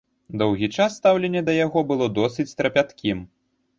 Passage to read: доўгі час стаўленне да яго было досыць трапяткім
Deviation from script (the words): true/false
false